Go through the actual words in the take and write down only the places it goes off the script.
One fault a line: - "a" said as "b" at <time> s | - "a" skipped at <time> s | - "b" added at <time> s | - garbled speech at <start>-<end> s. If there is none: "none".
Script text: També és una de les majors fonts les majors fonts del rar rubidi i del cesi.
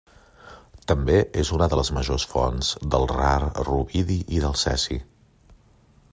- "les majors fonts" skipped at 2.7 s